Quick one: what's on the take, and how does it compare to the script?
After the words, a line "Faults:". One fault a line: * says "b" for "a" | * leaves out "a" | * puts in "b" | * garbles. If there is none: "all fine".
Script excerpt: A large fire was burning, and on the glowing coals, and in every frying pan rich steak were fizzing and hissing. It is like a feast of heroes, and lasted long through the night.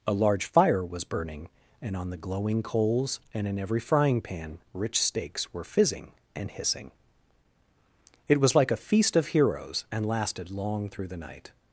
A large fire was burning, and on the glowing coals, and in every frying pan rich steaks were fizzing and hissing. It was like a feast of heroes, and lasted long through the night.
Faults:
* says "steaks" for "steak"
* says "was" for "is"